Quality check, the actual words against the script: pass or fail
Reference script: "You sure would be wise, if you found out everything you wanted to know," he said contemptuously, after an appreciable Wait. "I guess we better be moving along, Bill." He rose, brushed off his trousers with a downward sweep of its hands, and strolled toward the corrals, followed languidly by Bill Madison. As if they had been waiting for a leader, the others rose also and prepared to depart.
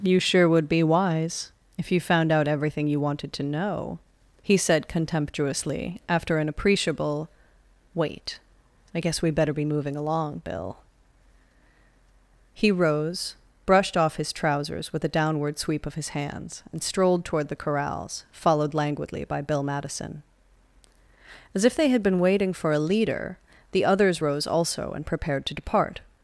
fail